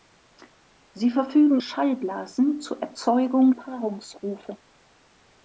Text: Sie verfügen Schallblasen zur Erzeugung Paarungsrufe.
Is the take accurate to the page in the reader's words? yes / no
yes